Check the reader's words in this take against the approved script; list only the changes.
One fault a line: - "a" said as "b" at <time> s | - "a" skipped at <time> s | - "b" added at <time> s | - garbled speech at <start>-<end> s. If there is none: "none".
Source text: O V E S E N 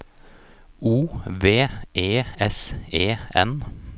none